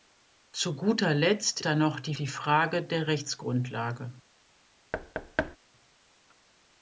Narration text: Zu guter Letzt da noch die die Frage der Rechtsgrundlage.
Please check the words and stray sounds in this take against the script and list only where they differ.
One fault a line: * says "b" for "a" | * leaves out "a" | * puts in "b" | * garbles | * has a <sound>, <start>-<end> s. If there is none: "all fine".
* has a thud, 4.9-5.6 s